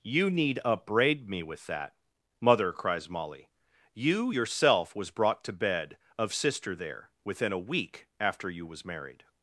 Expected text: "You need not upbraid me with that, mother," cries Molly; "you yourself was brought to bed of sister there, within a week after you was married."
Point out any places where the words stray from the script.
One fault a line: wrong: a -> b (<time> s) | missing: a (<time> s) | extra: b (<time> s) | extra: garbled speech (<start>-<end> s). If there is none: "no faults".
missing: not (0.6 s)